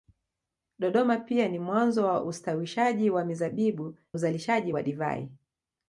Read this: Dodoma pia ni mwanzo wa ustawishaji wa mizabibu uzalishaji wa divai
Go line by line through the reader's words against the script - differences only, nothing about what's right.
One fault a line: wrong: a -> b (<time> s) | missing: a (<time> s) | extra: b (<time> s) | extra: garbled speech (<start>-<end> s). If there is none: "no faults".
no faults